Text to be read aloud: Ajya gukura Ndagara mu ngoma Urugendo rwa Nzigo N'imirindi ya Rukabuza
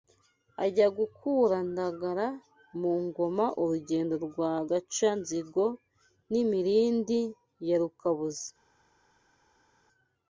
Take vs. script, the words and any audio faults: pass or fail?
fail